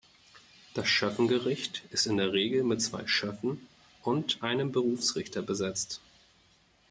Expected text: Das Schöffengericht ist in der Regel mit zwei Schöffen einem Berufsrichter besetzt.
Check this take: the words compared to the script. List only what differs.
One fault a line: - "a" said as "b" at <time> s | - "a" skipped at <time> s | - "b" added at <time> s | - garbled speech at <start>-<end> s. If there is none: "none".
- "und" added at 4.0 s